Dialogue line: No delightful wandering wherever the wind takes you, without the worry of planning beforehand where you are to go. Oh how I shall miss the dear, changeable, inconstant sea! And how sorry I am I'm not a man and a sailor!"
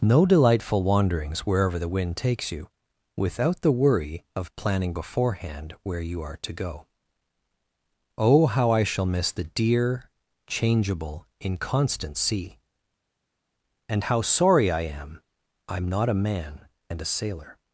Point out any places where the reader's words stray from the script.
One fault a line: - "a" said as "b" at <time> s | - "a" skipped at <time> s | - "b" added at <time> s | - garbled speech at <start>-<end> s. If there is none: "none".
- "wandering" said as "wanderings" at 0.8 s